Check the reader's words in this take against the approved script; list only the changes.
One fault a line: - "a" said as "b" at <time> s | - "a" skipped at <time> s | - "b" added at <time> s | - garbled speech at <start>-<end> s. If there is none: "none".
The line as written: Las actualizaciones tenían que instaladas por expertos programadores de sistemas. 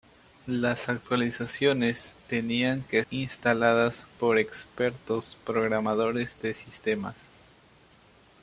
none